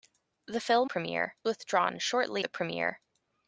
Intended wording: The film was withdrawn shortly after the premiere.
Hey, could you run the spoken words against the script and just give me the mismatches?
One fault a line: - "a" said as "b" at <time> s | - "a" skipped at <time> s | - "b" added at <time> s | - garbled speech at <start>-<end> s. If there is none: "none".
- "was" said as "premiere" at 0.8 s
- "after" skipped at 2.4 s